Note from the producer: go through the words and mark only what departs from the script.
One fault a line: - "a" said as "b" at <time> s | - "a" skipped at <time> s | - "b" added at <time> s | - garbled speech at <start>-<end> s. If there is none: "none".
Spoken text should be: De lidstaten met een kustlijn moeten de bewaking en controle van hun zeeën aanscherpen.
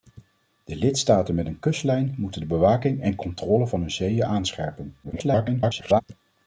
- garbled speech at 5.0-6.0 s